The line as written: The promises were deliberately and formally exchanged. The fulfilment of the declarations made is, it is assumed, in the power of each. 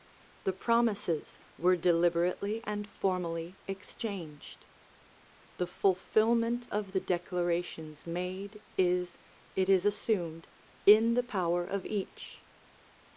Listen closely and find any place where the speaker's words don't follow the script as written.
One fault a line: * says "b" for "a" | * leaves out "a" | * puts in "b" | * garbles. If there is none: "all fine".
all fine